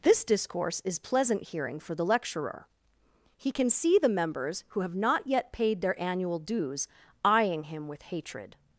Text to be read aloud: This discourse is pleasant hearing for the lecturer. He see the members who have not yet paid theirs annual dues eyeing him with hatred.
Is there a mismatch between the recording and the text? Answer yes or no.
yes